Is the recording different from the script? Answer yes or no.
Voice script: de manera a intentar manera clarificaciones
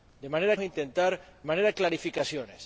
no